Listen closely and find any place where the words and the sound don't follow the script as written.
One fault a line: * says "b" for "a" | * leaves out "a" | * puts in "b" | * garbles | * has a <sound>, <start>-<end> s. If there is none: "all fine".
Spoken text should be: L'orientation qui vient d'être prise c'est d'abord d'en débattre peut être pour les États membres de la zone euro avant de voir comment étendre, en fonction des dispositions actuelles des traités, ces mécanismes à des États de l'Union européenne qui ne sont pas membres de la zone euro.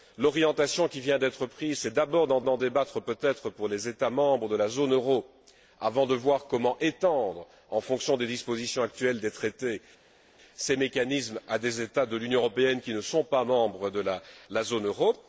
* puts in "d'en"